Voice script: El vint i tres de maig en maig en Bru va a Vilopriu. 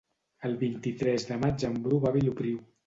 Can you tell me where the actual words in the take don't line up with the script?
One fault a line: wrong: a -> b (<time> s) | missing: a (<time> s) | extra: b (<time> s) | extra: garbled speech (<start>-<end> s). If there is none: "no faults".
missing: maig en (1.8 s)